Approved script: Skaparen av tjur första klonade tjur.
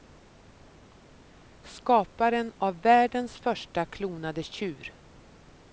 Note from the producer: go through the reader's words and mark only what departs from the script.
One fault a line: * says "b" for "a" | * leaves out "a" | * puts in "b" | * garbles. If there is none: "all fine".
* says "världens" for "tjur"